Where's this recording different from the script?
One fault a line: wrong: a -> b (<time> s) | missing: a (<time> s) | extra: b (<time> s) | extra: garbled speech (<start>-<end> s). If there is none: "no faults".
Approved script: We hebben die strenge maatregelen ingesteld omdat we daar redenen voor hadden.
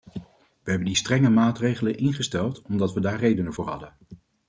no faults